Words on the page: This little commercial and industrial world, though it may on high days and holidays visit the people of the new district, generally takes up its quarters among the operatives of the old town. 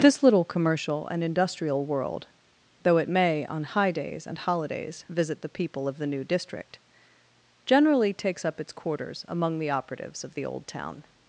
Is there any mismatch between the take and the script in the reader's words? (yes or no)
no